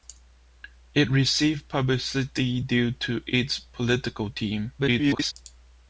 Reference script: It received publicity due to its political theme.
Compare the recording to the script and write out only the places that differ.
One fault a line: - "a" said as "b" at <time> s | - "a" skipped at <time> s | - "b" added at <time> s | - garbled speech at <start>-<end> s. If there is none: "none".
- garbled speech at 4.8-5.3 s